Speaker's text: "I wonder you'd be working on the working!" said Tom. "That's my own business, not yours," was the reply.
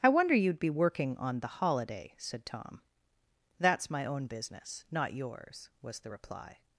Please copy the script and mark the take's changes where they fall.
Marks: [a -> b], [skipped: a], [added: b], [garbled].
"I wonder you'd be working on the [working!" -> holiday] said Tom. "That's my own business, not yours," was the reply.